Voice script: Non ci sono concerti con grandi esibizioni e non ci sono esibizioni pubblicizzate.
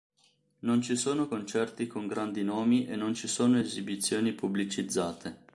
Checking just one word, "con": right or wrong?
right